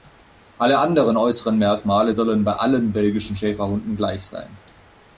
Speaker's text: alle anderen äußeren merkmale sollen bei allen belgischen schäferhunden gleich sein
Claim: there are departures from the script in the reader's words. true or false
false